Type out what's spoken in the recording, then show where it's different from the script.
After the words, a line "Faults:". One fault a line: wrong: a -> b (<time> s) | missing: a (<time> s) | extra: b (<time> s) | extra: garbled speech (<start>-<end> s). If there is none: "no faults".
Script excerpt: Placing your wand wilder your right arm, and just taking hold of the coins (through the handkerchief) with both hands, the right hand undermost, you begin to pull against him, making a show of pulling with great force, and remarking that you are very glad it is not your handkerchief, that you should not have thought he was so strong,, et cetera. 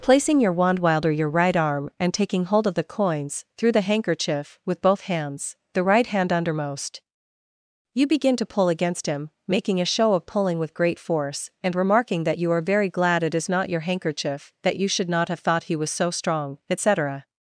Placing your wand wilder your right arm, and taking hold of the coins (through the handkerchief) with both hands, the right hand undermost, you begin to pull against him, making a show of pulling with great force, and remarking that you are very glad it is not your handkerchief, that you should not have thought he was so strong,, et cetera.
Faults:
missing: just (2.1 s)